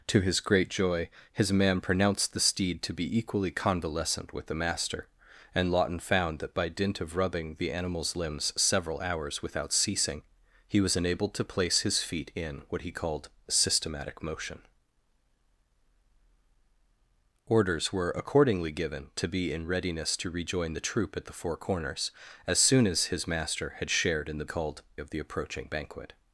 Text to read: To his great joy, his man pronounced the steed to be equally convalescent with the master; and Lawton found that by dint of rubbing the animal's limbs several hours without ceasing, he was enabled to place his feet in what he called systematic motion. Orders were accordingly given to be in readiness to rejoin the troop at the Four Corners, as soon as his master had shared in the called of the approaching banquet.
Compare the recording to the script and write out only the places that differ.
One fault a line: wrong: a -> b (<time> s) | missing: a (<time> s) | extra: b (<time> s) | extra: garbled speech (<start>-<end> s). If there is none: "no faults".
no faults